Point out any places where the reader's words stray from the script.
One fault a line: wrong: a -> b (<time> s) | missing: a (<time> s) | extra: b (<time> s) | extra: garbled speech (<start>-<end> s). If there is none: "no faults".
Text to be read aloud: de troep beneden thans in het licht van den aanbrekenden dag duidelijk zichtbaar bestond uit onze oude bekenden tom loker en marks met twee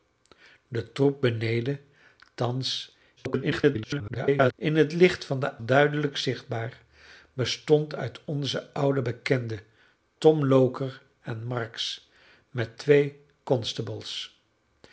extra: garbled speech (3.2-4.5 s)
missing: aanbrekenden dag (5.6 s)